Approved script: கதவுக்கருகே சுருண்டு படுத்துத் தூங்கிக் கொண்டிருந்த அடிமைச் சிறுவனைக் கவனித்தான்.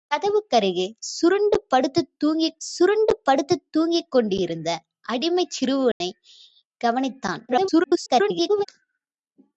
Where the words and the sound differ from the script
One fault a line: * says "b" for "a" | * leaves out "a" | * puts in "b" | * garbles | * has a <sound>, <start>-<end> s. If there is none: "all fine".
* puts in "சுருண்டு படுத்துத் தூங்கிக்"
* has a dropout, 5.9-6.0 s
* garbles